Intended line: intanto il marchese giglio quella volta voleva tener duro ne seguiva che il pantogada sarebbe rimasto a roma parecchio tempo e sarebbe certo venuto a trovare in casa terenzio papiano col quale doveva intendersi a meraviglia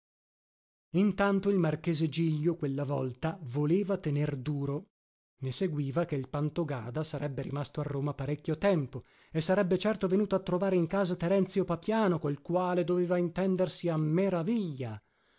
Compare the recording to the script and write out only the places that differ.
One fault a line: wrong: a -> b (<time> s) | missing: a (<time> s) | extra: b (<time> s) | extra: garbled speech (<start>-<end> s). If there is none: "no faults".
no faults